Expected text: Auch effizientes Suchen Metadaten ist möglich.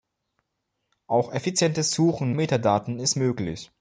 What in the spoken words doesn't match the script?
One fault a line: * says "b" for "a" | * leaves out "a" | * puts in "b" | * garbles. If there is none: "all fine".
all fine